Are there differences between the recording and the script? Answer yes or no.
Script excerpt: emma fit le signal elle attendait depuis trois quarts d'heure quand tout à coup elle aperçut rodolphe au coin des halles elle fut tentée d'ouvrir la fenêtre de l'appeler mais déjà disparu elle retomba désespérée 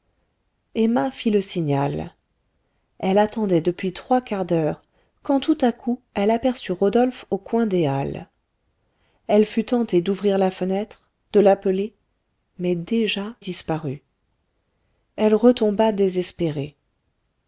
no